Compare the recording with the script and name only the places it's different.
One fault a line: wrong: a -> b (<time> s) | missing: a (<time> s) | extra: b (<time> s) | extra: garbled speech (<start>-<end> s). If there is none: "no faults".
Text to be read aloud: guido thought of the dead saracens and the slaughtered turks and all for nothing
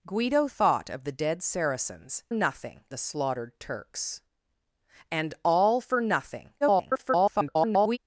wrong: and -> nothing (2.3 s)
extra: garbled speech (6.6-8.0 s)